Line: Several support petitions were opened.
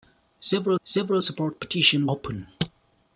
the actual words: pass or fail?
fail